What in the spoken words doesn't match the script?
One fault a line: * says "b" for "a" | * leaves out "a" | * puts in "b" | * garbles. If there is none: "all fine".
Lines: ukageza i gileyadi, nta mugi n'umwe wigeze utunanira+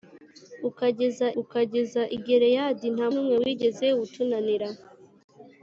* puts in "ukageza"
* leaves out "mugi"